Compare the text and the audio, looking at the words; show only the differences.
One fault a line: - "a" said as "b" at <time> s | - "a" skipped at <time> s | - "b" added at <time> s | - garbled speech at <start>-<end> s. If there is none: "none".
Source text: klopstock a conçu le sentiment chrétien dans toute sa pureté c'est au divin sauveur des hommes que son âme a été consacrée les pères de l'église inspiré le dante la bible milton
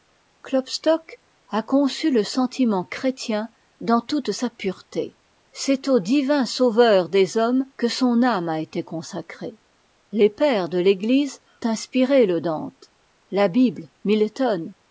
none